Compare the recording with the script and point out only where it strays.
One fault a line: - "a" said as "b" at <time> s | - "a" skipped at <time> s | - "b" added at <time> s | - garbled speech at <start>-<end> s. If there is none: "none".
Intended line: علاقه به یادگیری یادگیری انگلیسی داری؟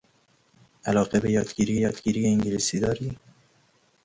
none